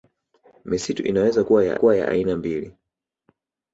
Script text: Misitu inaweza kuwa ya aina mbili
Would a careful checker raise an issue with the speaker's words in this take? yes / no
yes